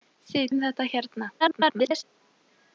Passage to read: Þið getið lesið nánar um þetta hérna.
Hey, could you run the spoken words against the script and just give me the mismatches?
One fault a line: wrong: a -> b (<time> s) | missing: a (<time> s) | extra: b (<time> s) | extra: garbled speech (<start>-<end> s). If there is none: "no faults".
missing: getið lesið nánar (0.5 s)
extra: garbled speech (1.4-2.0 s)